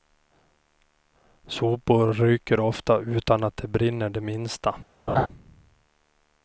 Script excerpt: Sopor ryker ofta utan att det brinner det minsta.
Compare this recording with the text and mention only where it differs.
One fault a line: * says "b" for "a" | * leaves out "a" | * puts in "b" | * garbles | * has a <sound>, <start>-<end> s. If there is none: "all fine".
* has a laugh, 5.1-5.3 s